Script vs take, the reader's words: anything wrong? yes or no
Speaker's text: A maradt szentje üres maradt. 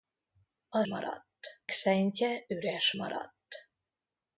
no